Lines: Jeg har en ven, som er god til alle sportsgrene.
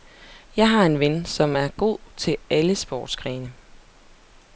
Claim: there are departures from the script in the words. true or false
false